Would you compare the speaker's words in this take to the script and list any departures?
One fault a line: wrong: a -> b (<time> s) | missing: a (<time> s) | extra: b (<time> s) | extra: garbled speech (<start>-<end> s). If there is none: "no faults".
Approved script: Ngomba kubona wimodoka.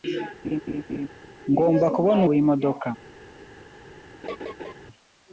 no faults